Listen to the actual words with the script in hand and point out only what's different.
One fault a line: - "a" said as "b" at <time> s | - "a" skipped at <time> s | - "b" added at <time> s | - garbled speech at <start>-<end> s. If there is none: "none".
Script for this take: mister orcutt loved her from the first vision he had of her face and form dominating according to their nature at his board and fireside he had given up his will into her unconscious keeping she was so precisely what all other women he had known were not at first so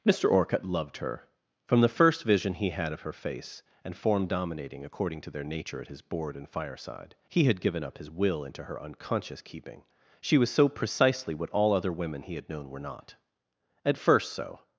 none